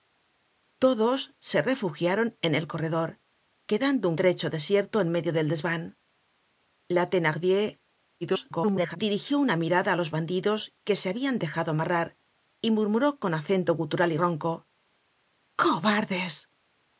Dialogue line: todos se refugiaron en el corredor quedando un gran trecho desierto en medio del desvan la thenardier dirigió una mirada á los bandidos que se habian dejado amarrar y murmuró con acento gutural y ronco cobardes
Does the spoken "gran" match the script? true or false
false